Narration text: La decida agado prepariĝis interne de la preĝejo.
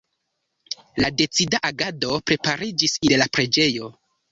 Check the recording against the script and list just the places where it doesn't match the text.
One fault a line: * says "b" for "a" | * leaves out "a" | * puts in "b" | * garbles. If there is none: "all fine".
* leaves out "interne"